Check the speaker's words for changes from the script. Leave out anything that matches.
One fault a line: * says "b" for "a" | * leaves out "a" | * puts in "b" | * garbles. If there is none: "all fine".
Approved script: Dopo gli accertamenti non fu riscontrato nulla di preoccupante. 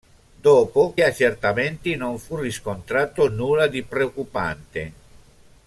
* leaves out "gli"